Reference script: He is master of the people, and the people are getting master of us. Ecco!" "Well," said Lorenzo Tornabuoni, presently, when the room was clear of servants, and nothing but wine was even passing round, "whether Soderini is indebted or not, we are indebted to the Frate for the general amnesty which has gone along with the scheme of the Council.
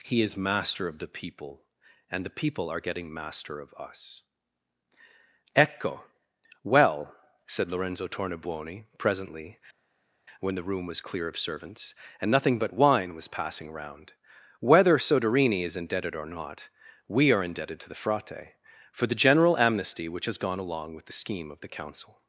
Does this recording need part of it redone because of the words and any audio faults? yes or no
yes